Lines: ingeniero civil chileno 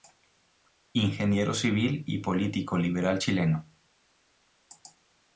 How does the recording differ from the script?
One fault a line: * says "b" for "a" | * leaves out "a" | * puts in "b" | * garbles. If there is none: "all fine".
* puts in "y político liberal"